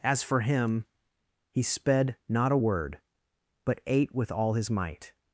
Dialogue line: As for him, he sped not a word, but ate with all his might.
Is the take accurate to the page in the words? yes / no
yes